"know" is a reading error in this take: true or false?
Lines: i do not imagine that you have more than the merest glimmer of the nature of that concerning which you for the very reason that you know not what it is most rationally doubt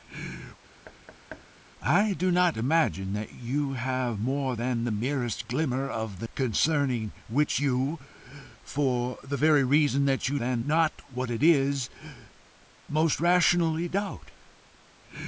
true